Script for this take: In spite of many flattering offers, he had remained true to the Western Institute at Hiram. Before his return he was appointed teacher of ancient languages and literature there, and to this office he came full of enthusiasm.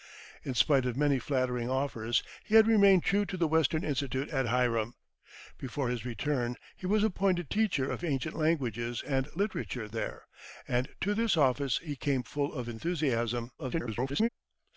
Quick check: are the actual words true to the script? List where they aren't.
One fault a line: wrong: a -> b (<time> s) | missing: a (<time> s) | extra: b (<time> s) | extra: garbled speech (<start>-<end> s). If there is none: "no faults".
extra: garbled speech (13.6-14.3 s)